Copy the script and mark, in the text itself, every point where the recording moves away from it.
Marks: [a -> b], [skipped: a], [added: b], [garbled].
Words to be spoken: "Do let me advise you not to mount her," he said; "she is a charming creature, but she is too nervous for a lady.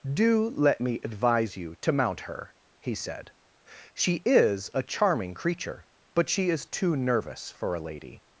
"Do let me advise you [skipped: not] to mount her," he said; "she is a charming creature, but she is too nervous for a lady.